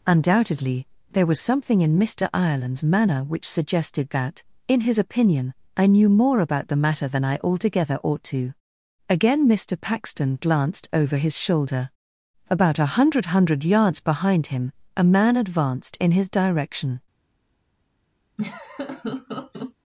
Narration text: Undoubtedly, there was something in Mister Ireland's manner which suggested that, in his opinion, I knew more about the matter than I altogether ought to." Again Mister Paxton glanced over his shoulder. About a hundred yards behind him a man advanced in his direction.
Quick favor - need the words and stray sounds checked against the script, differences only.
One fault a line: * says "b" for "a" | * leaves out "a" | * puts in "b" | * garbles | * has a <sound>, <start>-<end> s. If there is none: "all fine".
* puts in "hundred"
* has a laugh, 18.4-19.7 s